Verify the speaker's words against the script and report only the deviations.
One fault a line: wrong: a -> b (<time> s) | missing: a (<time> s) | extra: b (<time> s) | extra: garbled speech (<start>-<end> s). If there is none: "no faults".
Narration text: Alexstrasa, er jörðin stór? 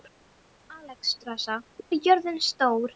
no faults